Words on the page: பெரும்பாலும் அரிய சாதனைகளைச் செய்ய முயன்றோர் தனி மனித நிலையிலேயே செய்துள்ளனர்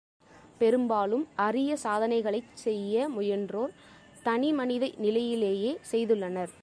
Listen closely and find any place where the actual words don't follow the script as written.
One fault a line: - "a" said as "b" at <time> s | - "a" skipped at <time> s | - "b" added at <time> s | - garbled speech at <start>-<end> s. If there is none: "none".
none